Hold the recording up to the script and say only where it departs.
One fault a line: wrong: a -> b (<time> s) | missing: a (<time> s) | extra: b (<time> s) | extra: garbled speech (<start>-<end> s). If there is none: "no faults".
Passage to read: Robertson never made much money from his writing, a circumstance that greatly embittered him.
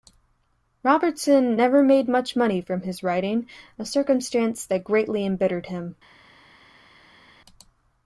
no faults